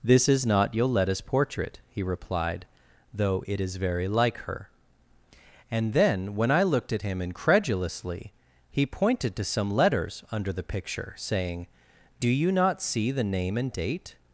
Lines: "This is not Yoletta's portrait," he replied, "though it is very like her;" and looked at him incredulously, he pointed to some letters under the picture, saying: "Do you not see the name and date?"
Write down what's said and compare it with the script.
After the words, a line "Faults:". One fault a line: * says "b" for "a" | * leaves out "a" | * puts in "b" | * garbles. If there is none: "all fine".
"This is not Yoletta's portrait," he replied, "though it is very like her;" and then, when I looked at him incredulously, he pointed to some letters under the picture, saying: "Do you not see the name and date?"
Faults:
* puts in "then when I"